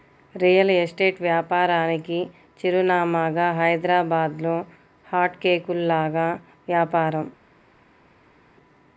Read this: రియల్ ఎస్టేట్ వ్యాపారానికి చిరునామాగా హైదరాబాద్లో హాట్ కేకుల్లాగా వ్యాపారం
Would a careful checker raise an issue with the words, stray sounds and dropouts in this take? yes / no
no